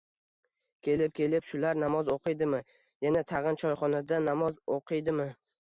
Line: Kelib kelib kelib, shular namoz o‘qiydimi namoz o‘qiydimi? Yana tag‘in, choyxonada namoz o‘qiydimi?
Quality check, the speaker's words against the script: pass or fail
fail